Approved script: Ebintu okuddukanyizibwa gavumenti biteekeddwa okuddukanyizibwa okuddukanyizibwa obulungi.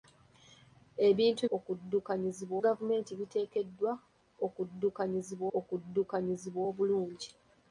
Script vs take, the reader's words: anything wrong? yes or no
no